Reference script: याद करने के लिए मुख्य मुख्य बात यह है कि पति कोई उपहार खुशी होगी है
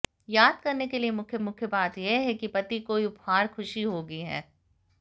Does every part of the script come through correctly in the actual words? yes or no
yes